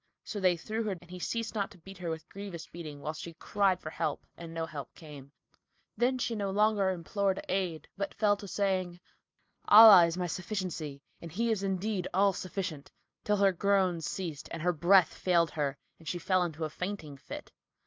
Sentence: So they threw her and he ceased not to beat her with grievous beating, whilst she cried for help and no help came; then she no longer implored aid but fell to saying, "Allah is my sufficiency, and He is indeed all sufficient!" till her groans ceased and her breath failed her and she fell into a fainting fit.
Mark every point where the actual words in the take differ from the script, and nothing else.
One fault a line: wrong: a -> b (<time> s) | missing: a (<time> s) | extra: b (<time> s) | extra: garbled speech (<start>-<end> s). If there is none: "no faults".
no faults